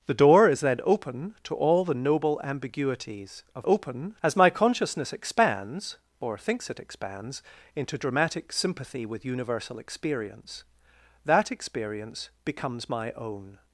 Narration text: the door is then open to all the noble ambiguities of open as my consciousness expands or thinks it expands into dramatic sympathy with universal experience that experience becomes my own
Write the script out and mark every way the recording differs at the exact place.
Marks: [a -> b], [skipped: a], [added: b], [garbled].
the door is then open to all the noble ambiguities of open as my consciousness expands or thinks it expands into dramatic sympathy with universal experience that experience becomes my own